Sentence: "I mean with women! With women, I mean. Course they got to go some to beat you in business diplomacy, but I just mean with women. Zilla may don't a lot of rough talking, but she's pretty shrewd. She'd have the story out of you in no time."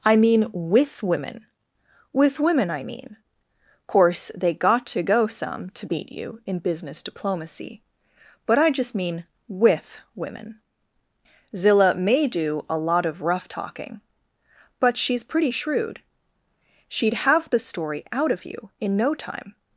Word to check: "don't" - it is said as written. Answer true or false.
false